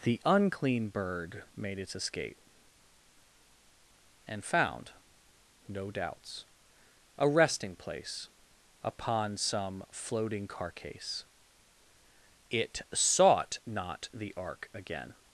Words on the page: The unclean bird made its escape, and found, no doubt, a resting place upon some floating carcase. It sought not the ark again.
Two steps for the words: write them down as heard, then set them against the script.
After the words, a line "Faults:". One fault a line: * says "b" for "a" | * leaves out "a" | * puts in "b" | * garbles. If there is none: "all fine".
The unclean bird made its escape, and found, no doubts, a resting place upon some floating carcase. It sought not the ark again.
Faults:
* says "doubts" for "doubt"